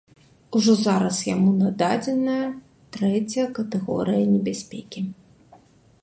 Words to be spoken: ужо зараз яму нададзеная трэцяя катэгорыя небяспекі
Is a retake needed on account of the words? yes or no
no